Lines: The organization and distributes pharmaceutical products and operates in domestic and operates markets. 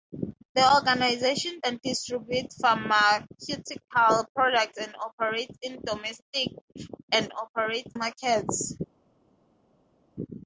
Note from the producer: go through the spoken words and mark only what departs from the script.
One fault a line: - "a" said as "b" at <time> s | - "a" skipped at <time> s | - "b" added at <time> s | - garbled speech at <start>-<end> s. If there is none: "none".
none